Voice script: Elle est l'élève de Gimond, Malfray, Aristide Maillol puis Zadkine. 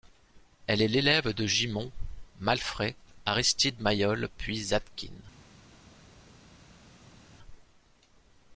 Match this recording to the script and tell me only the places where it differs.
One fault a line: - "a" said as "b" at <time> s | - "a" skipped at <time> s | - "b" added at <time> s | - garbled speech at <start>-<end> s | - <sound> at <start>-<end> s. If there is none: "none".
none